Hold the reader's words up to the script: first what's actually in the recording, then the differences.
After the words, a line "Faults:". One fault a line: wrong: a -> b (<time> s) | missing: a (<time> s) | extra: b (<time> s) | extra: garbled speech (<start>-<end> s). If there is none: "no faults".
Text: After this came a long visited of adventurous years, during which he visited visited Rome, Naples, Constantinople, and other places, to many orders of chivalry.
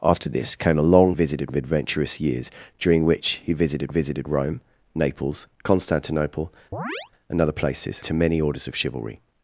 After this came a long visited of adventurous years, during which he visited visited Rome, Naples, Constantinople, and other places, to many orders of chivalry.
Faults:
no faults